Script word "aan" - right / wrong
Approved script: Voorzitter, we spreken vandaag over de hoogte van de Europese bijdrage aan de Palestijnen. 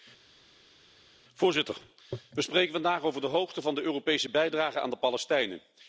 right